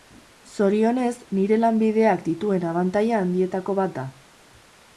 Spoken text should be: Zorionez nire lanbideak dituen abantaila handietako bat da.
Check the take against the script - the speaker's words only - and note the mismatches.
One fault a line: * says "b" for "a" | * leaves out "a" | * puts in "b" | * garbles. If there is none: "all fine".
all fine